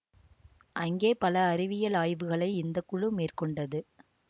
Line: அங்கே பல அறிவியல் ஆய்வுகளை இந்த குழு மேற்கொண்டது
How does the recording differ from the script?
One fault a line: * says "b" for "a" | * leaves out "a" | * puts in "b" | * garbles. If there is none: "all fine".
all fine